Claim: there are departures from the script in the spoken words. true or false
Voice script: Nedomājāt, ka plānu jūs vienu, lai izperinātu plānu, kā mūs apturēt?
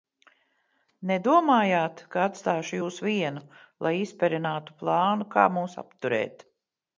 true